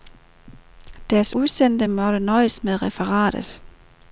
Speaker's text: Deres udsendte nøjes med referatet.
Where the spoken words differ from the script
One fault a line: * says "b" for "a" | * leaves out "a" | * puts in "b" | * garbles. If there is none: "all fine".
* puts in "måtte"